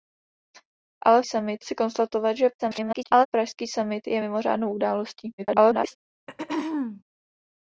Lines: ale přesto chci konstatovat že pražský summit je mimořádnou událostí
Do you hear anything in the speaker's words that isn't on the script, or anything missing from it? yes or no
yes